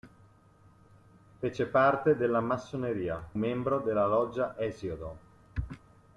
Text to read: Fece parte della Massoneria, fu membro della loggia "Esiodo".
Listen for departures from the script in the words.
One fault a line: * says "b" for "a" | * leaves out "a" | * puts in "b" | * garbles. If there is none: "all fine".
* leaves out "fu"